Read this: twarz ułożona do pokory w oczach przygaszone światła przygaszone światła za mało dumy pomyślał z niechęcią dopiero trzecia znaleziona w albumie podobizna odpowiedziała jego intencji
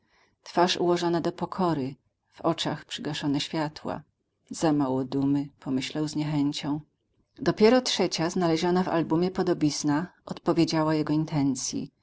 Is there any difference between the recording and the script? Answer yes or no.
yes